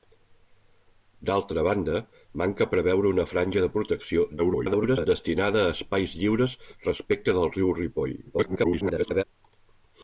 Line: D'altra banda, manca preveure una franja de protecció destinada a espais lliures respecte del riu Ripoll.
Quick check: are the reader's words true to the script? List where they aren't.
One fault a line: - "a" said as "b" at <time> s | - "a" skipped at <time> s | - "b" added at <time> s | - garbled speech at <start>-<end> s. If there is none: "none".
- garbled speech at 4.4-5.1 s
- garbled speech at 8.3-9.2 s